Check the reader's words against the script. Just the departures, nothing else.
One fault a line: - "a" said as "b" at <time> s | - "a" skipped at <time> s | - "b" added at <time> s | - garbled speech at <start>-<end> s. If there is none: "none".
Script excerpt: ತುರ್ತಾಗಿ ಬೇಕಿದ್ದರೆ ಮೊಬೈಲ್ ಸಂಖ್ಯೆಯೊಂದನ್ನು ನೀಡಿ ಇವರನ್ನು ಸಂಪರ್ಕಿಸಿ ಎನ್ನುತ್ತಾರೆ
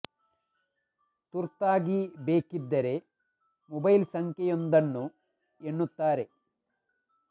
- "ನೀಡಿ ಇವರನ್ನು ಸಂಪರ್ಕಿಸಿ" skipped at 5.0 s